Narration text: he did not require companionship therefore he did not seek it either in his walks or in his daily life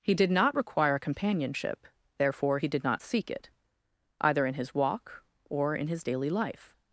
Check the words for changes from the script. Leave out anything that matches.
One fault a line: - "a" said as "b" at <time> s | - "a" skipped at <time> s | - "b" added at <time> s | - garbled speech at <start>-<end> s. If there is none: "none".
- "walks" said as "walk" at 4.7 s